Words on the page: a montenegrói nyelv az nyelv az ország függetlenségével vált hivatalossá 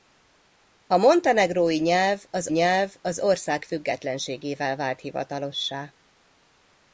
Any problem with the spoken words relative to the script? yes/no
no